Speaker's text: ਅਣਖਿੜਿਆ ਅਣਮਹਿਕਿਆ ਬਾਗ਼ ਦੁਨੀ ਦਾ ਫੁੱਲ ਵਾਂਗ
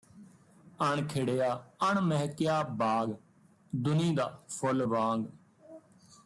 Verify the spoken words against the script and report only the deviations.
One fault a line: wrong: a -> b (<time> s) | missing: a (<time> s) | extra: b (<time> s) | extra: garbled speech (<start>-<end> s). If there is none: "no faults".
no faults